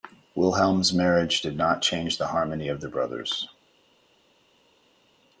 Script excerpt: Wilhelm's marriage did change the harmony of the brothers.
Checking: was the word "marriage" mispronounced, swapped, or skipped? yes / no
no